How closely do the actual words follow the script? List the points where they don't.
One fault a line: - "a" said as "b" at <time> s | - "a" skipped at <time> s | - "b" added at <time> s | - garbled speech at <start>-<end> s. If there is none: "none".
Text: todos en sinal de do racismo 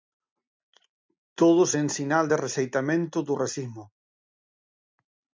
- "rexeitamento" added at 2.4 s